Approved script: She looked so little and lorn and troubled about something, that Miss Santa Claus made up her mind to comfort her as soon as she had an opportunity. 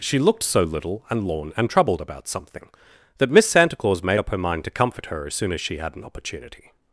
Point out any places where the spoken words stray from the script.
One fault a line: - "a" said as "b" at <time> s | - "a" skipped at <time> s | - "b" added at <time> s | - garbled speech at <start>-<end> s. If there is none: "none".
none